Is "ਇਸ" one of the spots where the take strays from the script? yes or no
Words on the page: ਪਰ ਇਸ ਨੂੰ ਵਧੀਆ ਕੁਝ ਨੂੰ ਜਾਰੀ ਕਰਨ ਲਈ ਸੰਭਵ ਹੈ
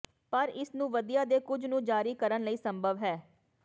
no